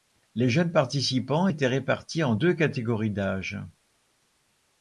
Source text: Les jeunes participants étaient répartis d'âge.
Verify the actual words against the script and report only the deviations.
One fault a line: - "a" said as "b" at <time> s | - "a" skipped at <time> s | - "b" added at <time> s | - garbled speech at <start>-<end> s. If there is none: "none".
- "en deux catégories" added at 2.2 s